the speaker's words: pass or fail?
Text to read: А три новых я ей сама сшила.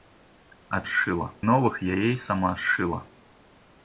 fail